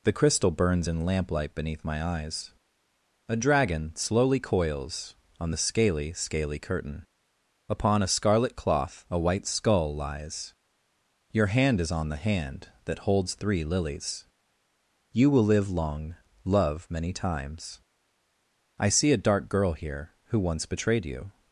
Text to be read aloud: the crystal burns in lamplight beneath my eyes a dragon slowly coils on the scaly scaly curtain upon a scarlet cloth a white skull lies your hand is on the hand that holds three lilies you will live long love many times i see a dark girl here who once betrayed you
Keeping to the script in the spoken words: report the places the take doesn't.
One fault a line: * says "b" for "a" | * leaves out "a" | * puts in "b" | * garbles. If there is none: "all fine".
all fine